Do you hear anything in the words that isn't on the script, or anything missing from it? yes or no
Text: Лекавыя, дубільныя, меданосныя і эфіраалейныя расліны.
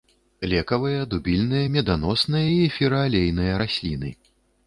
no